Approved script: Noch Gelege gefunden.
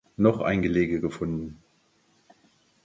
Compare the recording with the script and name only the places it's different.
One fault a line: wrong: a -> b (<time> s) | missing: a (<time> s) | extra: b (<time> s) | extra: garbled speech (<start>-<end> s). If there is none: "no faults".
extra: ein (0.4 s)